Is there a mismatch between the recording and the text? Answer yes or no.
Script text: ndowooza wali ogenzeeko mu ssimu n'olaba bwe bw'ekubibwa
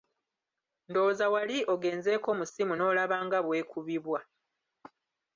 yes